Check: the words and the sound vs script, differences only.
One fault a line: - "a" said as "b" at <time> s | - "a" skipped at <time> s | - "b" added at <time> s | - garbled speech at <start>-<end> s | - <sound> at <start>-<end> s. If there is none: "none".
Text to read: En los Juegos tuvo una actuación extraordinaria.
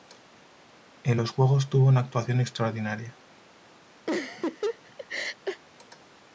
- laugh at 4.1-5.6 s